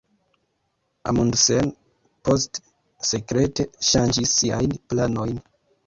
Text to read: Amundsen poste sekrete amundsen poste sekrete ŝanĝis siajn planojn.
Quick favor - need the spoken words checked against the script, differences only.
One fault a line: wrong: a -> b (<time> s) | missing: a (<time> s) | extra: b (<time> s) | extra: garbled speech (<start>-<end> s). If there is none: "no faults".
missing: amundsen poste sekrete (3.7 s)